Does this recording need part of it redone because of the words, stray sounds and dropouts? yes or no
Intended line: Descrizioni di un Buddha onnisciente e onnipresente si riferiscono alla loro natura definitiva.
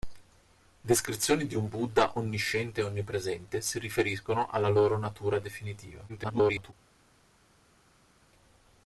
yes